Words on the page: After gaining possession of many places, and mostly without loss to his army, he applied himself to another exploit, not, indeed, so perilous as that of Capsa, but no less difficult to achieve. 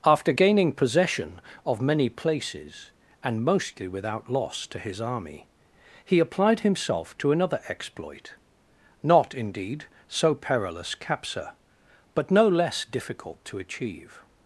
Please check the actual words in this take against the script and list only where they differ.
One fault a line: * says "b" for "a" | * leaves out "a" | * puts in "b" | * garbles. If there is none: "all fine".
* leaves out "as that of"